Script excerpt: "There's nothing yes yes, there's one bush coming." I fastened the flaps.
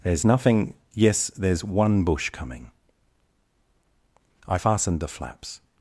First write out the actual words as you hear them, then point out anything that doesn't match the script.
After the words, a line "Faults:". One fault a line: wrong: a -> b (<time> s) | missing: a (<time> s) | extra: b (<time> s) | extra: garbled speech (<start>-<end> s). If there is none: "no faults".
"There's nothing yes, there's one bush coming." I fastened the flaps.
Faults:
missing: yes (1.3 s)